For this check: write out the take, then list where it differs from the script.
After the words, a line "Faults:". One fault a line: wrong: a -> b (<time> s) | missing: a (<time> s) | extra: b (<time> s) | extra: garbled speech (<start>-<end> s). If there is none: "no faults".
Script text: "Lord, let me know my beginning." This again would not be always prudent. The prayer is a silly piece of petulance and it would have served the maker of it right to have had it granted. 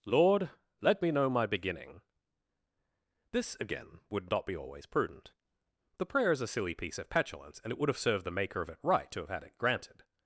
"Lord, let me know my beginning." This again would not be always prudent. The prayer is a silly piece of petulance and it would have served the maker of it right to have had it granted.
Faults:
no faults